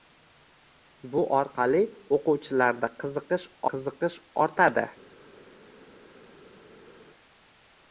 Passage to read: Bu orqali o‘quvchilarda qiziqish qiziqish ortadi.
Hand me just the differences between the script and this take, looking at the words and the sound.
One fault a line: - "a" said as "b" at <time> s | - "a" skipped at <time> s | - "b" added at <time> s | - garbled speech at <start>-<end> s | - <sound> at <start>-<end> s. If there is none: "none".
none